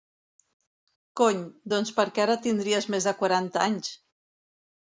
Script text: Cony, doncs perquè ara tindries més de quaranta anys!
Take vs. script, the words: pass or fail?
pass